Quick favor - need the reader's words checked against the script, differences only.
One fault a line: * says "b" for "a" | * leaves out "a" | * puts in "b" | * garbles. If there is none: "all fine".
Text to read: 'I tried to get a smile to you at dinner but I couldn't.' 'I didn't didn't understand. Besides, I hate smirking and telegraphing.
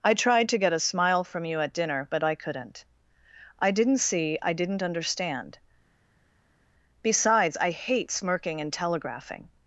* says "from" for "to"
* puts in "see I"